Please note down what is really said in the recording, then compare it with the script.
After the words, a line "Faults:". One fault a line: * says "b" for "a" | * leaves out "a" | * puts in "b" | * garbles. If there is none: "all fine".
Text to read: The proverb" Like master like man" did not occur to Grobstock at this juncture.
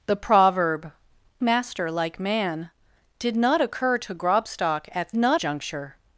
The proverb" Master like man" did not occur to Grobstock at not juncture.
Faults:
* leaves out "Like"
* says "not" for "this"